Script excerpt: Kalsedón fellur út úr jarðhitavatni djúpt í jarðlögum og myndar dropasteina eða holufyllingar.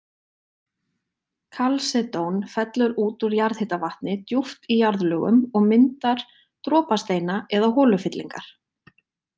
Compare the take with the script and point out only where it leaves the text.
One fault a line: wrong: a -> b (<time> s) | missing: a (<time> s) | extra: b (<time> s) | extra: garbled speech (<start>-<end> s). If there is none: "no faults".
no faults